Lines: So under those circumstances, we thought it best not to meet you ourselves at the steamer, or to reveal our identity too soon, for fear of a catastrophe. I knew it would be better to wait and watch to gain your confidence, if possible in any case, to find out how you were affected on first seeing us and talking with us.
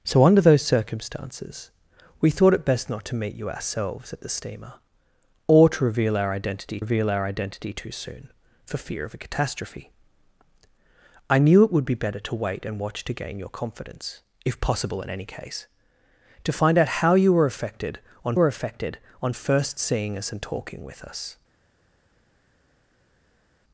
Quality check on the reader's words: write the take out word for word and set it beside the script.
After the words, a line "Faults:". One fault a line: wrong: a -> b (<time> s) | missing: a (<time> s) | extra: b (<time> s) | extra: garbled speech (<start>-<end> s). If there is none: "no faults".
So under those circumstances, we thought it best not to meet you ourselves at the steamer, or to reveal our identity reveal our identity too soon, for fear of a catastrophe. I knew it would be better to wait and watch to gain your confidence, if possible in any case, to find out how you were affected on were affected on first seeing us and talking with us.
Faults:
extra: reveal our identity (6.8 s)
extra: were affected on (18.4 s)